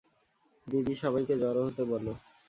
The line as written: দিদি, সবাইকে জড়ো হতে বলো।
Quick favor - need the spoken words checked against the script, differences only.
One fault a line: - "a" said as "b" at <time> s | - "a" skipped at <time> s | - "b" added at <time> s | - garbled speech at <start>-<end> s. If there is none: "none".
none